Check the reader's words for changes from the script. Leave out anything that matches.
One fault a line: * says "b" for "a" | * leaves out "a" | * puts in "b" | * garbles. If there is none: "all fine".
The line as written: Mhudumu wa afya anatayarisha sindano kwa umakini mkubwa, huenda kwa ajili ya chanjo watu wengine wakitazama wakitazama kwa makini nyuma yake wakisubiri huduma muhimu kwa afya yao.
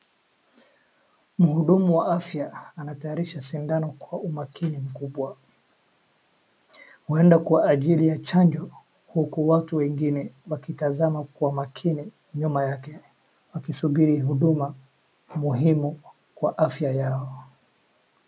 * puts in "huku"
* leaves out "wakitazama"